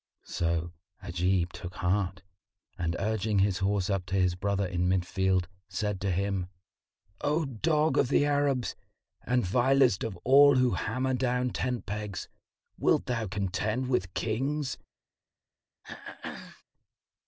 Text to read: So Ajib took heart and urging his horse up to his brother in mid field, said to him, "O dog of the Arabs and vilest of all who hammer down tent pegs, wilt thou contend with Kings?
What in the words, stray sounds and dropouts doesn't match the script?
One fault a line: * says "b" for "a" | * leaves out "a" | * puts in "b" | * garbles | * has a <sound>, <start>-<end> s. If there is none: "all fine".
* has a throat clearing, 15.8-16.6 s